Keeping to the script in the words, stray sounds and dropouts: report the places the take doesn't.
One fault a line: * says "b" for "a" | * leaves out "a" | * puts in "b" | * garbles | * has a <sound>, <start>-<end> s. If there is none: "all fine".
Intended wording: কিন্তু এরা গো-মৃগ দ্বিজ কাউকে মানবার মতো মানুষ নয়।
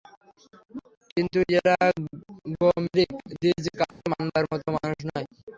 * has a dropout, 3.9-4.0 s